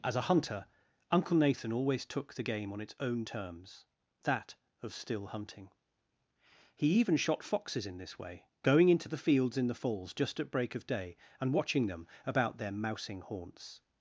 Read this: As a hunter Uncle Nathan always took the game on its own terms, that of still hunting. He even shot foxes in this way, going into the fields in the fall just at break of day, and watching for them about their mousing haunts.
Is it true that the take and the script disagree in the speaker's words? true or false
true